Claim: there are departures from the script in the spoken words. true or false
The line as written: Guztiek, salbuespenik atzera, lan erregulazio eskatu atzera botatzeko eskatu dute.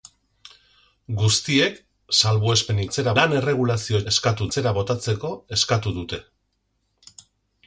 false